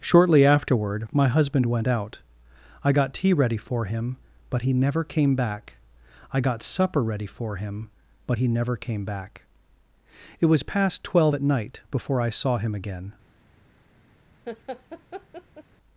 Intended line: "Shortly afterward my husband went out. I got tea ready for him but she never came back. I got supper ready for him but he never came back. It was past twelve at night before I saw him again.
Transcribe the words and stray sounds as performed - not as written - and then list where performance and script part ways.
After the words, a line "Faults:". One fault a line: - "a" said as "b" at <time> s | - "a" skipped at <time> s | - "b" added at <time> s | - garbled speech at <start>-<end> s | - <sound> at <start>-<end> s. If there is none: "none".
"Shortly afterward my husband went out. I got tea ready for him but he never came back. I got supper ready for him but he never came back. It was past twelve at night before I saw him again.
Faults:
- "she" said as "he" at 4.6 s
- laugh at 14.5-15.6 s